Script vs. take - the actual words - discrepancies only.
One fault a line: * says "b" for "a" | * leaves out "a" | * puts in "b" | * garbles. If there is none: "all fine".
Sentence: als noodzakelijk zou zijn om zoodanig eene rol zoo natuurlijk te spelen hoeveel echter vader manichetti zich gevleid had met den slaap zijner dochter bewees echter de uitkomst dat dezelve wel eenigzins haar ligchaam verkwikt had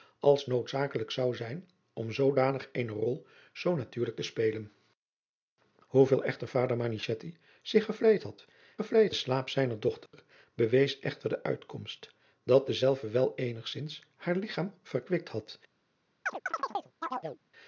* says "gevleid" for "met"